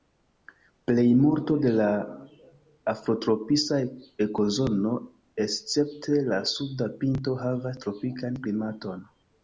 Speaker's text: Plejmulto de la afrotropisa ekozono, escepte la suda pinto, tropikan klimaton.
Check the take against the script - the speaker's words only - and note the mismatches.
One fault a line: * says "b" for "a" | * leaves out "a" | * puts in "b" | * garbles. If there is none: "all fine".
* puts in "havas"